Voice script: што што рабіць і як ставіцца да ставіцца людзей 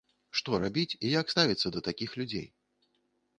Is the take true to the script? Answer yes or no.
no